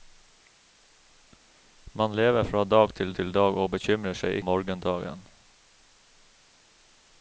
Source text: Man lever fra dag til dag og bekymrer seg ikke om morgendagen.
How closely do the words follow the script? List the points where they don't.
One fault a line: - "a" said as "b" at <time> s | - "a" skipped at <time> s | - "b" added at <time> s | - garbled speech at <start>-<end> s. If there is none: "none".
- "til" added at 3.2 s
- "ikke" skipped at 4.4 s